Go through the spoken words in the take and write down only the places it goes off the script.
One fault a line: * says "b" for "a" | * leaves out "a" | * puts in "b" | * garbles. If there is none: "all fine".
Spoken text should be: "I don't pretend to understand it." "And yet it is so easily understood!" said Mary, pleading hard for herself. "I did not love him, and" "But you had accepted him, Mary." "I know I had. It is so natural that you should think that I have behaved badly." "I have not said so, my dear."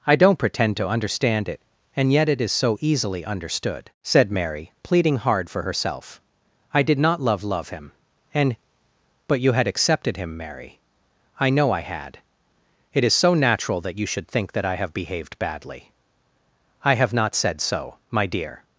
* puts in "love"